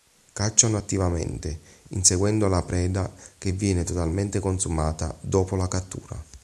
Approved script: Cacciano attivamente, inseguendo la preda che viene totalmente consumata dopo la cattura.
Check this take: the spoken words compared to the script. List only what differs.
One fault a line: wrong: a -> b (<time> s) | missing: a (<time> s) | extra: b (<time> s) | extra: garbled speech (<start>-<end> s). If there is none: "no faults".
no faults